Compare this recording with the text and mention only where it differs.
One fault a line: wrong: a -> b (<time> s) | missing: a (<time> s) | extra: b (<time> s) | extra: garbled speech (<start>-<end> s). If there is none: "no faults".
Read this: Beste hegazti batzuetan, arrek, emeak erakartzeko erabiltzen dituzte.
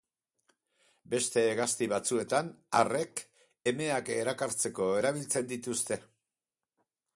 no faults